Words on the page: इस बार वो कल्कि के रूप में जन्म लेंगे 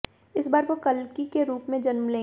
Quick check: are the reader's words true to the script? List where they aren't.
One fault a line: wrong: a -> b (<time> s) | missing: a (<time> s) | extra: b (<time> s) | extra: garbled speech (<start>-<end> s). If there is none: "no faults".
no faults